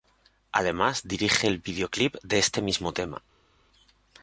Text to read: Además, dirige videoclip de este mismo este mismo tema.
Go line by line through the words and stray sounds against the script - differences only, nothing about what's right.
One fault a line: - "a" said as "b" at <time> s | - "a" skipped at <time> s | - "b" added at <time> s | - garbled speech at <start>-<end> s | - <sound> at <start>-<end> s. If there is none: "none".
- "el" added at 1.4 s
- "este mismo" skipped at 2.9 s